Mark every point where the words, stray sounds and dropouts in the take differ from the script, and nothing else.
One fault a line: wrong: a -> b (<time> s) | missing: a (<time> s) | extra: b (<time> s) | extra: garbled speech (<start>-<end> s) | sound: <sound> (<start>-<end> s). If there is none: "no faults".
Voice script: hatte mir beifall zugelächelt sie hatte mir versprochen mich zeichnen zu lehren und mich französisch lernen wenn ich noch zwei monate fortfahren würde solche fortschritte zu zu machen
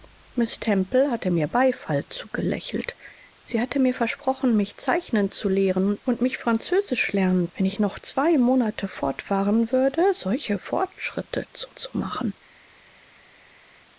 no faults